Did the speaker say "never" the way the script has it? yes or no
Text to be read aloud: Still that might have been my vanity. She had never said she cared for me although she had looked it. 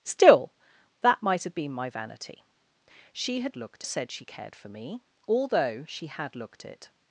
no